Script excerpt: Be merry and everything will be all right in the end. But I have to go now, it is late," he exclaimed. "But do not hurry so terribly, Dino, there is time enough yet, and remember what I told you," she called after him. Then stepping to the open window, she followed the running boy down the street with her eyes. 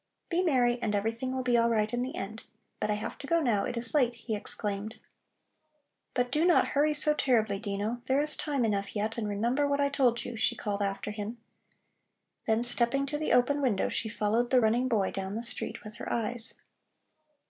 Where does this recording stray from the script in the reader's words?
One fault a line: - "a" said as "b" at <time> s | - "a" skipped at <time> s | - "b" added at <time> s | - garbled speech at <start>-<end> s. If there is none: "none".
none